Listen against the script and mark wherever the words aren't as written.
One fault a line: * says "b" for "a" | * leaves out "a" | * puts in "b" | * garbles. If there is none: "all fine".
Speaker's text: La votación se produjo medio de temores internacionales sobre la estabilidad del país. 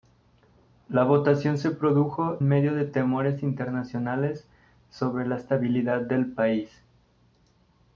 all fine